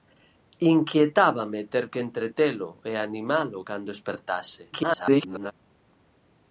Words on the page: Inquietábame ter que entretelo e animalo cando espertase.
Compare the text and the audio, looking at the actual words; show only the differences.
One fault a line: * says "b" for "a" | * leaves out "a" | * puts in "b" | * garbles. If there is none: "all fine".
* garbles